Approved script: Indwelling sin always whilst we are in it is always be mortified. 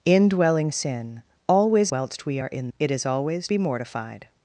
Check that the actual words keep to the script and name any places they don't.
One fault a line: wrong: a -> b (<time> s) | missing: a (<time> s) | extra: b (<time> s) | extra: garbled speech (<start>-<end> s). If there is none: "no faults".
no faults